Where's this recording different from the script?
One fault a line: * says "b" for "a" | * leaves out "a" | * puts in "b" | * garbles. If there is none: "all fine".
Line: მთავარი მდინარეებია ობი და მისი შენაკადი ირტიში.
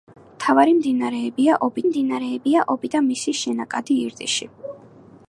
* puts in "მდინარეებია ობი"